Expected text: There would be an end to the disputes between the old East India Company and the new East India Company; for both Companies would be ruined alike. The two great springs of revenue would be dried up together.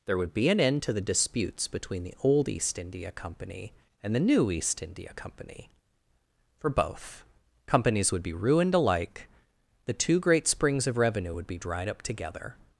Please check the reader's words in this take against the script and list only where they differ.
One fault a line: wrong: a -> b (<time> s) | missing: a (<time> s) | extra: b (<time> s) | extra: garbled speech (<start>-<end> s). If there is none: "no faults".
no faults